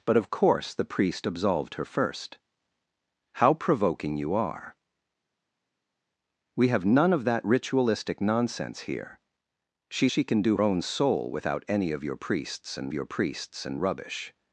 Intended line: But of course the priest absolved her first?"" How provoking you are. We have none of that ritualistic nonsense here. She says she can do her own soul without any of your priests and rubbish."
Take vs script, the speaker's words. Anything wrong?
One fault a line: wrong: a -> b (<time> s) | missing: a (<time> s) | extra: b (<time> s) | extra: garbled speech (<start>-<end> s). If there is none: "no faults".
missing: says (10.1 s)
missing: her (10.6 s)
extra: your priests and (12.9 s)